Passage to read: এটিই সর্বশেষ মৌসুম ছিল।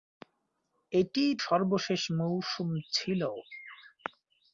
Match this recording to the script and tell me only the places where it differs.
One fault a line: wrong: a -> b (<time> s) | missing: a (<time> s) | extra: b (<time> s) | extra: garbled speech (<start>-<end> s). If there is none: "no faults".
no faults